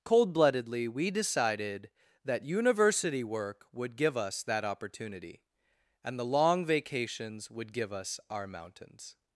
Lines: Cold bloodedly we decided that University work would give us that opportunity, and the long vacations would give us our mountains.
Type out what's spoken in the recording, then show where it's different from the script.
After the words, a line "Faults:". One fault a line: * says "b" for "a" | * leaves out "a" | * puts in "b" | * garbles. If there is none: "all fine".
Cold bloodedly we decided that University work would give us that opportunity, and the long vacations would give us our mountains.
Faults:
all fine